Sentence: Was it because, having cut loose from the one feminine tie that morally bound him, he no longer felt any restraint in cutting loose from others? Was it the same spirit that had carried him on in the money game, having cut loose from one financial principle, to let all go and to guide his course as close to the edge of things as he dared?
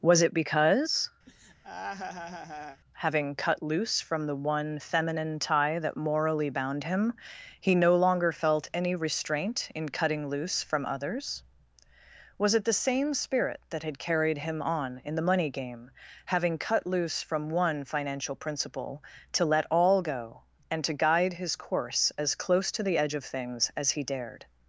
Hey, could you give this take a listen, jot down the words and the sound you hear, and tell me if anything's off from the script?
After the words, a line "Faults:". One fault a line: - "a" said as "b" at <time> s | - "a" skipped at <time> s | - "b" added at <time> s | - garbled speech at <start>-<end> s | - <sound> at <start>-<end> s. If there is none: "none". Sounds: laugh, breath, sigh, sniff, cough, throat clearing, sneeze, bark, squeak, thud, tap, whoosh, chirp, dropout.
Was it because, having cut loose from the one feminine tie that morally bound him, he no longer felt any restraint in cutting loose from others? Was it the same spirit that had carried him on in the money game, having cut loose from one financial principle, to let all go and to guide his course as close to the edge of things as he dared?
Faults:
- laugh at 1.3-2.8 s